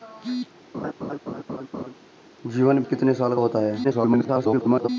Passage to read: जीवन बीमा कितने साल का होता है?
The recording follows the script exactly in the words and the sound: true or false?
false